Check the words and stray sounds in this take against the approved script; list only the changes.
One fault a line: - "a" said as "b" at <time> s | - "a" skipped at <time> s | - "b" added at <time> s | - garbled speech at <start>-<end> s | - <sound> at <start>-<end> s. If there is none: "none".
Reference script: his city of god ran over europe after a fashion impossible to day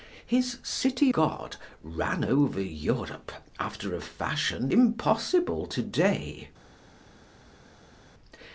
- "of" skipped at 1.1 s